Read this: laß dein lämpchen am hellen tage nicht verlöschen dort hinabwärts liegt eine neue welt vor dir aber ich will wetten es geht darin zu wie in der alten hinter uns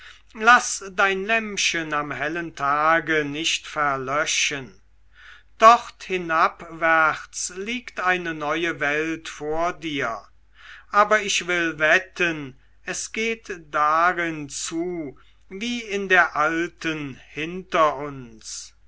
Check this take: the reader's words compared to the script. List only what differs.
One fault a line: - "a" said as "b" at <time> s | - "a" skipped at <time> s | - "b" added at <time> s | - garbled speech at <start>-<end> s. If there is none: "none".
none